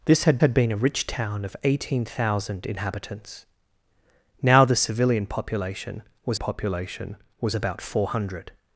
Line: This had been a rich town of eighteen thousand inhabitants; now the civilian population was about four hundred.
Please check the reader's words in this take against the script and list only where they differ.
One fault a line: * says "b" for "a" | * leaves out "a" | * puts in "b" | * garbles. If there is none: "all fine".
* puts in "had"
* puts in "population was"